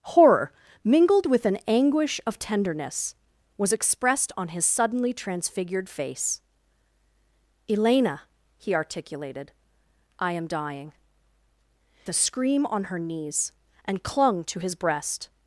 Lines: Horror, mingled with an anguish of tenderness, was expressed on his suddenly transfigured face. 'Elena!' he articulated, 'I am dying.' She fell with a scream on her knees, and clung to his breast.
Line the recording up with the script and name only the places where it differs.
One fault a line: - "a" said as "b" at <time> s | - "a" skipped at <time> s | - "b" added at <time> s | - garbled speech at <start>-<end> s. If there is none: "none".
- "She fell with" skipped at 10.9 s